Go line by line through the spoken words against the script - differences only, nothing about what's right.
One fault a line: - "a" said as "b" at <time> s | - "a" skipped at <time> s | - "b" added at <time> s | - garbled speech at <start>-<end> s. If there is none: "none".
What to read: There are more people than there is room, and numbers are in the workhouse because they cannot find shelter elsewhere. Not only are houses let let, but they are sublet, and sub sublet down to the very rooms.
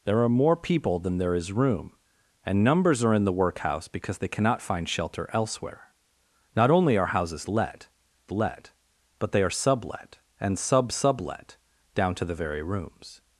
none